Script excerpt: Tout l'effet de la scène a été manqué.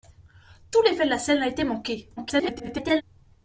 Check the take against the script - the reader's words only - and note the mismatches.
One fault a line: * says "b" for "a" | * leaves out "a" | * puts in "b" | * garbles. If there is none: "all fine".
* garbles